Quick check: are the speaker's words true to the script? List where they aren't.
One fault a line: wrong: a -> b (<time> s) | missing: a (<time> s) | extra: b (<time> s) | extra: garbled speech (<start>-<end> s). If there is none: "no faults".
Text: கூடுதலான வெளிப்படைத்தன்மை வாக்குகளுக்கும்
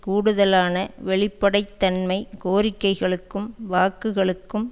extra: கோரிக்கைகளுக்கும் (2.4 s)